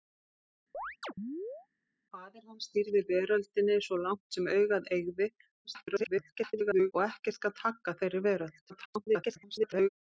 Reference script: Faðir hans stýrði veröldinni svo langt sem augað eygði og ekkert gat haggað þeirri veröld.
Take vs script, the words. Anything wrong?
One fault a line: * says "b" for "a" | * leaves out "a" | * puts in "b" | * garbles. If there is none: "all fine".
* garbles
* garbles